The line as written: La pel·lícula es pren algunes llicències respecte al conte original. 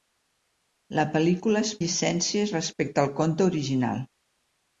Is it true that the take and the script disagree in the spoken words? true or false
true